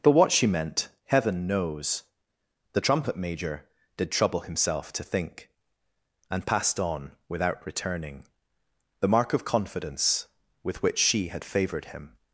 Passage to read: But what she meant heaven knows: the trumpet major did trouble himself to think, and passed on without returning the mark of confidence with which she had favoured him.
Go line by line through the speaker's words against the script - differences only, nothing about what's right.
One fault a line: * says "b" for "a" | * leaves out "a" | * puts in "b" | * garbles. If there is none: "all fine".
all fine